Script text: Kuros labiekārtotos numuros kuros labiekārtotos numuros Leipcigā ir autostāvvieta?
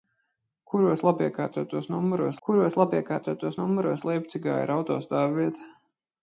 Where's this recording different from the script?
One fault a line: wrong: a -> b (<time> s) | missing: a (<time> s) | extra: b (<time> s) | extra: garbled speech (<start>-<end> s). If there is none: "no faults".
no faults